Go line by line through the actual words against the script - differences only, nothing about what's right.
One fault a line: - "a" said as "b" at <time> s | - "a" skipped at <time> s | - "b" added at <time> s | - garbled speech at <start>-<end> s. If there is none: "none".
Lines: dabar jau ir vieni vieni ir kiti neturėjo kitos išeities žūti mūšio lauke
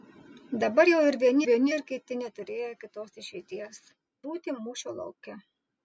none